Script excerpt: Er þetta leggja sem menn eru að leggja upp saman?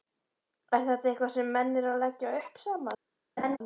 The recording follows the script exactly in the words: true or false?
false